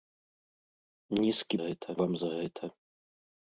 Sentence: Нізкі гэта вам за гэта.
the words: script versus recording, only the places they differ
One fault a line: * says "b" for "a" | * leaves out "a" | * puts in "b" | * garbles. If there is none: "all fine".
all fine